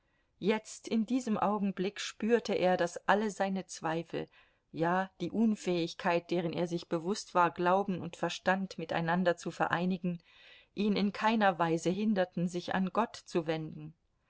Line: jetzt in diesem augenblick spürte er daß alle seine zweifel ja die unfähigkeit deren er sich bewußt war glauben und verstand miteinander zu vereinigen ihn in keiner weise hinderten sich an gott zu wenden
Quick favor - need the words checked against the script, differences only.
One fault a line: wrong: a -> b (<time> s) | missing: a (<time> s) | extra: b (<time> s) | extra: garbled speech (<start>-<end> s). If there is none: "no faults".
no faults